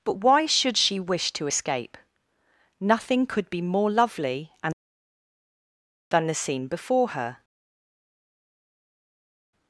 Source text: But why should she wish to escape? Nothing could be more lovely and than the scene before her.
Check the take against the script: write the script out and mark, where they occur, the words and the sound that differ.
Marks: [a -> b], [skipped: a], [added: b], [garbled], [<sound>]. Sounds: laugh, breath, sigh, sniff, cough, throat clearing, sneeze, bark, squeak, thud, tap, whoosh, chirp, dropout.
But why should she wish to escape? Nothing could be more lovely and than the scene before her.